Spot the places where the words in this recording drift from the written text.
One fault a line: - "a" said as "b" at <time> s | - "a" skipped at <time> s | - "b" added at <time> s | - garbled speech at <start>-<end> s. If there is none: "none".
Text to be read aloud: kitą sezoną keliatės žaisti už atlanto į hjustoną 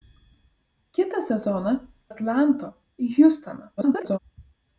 - "keliatės žaisti už" skipped at 1.7 s
- garbled speech at 3.8-4.2 s